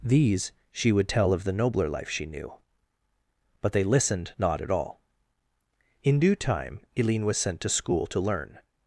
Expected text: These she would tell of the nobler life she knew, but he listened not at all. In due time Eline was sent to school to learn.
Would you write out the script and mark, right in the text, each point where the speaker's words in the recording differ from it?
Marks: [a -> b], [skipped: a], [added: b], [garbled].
These she would tell of the nobler life she knew, but [he -> they] listened not at all. In due time Eline was sent to school to learn.